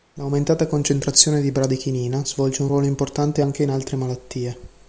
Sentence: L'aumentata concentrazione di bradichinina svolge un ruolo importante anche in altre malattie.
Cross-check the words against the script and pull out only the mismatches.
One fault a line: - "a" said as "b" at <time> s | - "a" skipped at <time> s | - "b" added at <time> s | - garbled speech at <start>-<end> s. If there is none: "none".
none